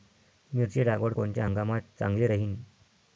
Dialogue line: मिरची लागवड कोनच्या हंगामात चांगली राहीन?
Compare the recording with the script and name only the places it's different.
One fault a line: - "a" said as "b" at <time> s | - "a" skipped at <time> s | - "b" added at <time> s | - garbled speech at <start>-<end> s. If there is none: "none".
none